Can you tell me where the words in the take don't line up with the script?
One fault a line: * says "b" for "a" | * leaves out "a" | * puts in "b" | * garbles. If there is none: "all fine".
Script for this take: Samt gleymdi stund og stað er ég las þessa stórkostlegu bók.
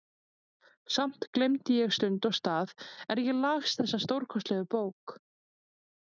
* puts in "ég"